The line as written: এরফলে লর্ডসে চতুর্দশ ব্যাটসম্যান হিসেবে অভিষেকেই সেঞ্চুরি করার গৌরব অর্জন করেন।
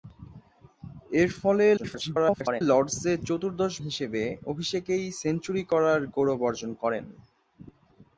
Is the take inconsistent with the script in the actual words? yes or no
yes